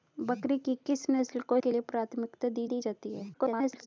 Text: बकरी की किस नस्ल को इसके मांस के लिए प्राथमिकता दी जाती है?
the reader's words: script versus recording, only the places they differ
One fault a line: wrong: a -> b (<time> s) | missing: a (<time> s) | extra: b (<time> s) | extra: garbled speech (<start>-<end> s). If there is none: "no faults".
missing: इसके मांस (1.6 s)
extra: दी (2.7 s)
extra: garbled speech (3.3-3.9 s)